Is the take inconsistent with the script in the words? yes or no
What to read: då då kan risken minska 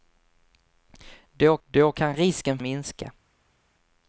no